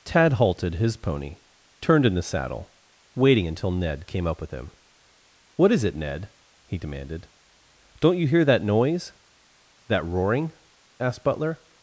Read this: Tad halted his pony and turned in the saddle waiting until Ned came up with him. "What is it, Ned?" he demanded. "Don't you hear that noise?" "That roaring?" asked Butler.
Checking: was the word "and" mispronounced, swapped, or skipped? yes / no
yes